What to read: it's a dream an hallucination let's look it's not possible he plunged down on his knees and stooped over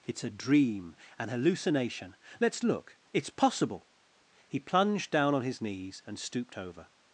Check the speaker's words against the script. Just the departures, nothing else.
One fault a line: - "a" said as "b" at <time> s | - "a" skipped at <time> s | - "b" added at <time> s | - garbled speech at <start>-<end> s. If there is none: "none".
- "not" skipped at 3.3 s